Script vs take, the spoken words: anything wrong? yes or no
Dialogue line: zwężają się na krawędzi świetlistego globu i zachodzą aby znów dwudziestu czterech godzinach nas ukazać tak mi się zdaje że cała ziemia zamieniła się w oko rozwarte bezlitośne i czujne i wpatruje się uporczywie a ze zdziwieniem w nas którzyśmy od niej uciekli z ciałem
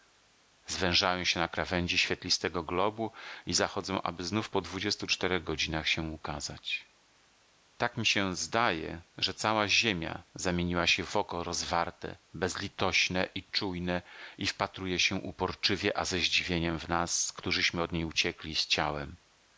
yes